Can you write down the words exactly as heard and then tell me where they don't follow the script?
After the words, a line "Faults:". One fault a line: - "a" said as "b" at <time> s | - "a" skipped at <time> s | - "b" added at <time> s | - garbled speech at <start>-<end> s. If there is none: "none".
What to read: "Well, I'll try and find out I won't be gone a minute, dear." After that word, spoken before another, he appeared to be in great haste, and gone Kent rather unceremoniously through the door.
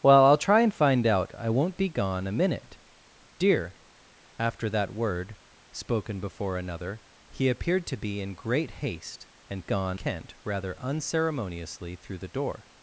"Well, I'll try and find out I won't be gone a minute, dear." After that word, spoken before another, he appeared to be in great haste, and gone Kent rather unceremoniously through the door.
Faults:
none